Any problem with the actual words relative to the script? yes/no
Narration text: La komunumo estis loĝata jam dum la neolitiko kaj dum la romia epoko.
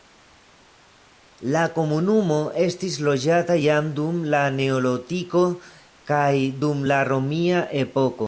no